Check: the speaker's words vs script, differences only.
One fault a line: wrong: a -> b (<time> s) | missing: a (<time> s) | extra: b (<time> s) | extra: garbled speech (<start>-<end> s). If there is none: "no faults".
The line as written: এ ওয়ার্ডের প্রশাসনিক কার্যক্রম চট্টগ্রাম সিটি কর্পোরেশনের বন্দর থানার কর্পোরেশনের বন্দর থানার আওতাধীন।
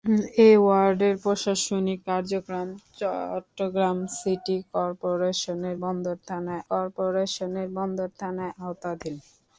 no faults